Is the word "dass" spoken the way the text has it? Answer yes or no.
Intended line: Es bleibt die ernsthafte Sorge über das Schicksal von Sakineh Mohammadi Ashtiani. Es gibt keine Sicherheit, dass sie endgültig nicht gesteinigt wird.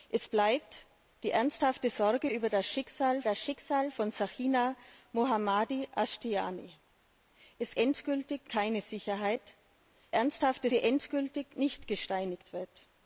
no